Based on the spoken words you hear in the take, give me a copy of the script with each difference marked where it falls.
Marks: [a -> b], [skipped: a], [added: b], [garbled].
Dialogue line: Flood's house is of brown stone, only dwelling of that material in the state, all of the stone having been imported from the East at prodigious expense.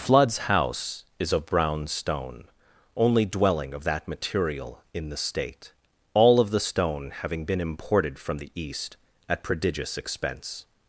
Flood's house is of brown stone, only dwelling of that material in the state, all of the stone having been imported from the East at prodigious expense.